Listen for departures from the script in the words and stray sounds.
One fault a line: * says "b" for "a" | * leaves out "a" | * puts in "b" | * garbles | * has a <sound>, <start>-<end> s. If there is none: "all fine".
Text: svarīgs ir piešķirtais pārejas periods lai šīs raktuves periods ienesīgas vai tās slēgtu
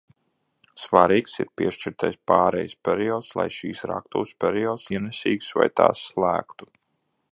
all fine